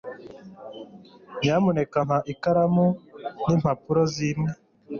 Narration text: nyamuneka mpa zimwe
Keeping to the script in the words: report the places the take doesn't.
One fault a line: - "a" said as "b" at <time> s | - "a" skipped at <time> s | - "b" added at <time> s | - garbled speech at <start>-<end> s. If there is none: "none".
- "ikaramu n'impapuro" added at 2.3 s